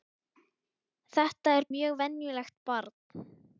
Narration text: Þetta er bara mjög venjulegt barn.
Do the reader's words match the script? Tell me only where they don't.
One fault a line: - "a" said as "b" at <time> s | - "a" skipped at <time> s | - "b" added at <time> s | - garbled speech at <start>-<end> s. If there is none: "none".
- "bara" skipped at 1.7 s